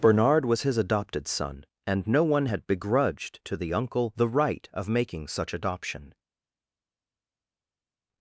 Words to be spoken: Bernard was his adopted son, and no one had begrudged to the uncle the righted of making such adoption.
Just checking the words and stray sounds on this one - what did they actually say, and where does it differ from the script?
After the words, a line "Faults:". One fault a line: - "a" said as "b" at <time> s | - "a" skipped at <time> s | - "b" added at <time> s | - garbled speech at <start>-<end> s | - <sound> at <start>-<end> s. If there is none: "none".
Bernard was his adopted son, and no one had begrudged to the uncle the right of making such adoption.
Faults:
- "righted" said as "right" at 4.3 s